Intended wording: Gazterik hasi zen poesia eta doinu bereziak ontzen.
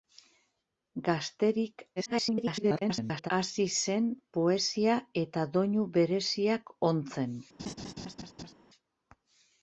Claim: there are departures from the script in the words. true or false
true